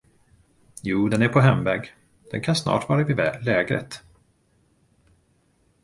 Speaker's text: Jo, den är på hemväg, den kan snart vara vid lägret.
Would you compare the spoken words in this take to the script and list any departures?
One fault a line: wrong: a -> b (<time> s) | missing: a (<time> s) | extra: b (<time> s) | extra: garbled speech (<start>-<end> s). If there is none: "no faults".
no faults